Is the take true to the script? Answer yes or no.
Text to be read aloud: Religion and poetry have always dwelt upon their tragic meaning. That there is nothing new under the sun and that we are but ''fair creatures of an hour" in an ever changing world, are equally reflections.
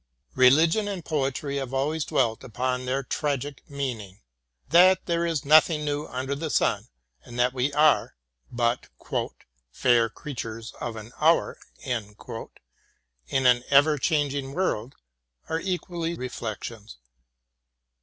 yes